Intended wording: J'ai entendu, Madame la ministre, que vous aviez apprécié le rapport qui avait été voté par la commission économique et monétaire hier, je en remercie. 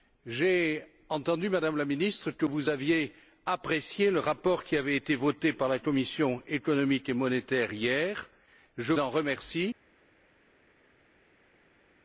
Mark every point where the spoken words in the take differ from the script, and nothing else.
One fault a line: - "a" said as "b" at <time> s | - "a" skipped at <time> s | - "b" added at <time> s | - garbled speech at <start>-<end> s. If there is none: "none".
none